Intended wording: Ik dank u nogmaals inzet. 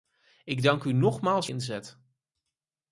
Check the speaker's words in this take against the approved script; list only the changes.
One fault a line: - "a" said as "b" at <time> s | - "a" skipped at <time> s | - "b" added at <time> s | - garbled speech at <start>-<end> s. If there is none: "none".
none